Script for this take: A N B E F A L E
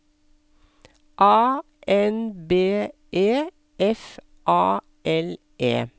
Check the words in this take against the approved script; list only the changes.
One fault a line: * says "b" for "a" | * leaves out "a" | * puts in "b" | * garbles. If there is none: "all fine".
all fine